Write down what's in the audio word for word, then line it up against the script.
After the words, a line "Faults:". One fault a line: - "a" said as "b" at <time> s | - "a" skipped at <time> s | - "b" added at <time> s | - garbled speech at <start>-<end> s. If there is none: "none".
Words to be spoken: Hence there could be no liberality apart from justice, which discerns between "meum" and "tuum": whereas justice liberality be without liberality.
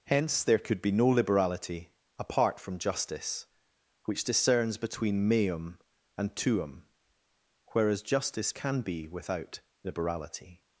Hence there could be no liberality apart from justice, which discerns between "meum" and "tuum": whereas justice can be without liberality.
Faults:
- "liberality" said as "can" at 8.5 s